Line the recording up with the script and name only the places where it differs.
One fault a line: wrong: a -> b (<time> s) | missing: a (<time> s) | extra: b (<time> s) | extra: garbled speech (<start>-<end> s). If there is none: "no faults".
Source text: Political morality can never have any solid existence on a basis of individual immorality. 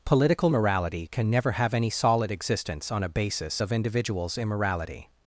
wrong: individual -> individuals (3.7 s)